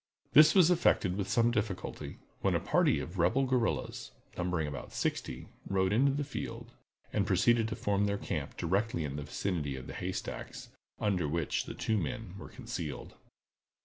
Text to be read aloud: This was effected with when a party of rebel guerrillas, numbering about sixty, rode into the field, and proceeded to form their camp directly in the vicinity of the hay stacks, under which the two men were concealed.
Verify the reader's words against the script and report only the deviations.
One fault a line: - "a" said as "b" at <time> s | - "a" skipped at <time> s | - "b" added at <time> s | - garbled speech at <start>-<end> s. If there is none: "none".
- "some difficulty" added at 1.3 s